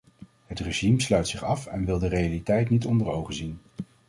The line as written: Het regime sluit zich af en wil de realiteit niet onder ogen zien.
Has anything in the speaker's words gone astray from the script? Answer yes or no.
no